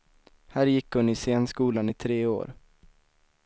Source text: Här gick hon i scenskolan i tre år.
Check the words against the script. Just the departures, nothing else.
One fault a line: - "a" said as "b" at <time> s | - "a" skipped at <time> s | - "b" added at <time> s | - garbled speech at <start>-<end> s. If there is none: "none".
none